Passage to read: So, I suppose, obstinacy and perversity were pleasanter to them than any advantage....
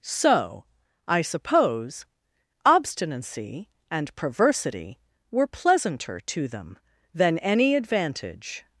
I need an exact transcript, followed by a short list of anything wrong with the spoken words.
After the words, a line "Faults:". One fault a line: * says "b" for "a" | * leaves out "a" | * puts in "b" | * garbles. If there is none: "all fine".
So, I suppose, obstinacy and perversity were pleasanter to them than any advantage....
Faults:
all fine